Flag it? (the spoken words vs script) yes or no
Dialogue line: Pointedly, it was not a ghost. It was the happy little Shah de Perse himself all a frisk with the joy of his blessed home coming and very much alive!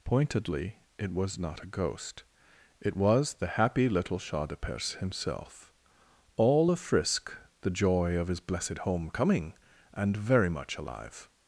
yes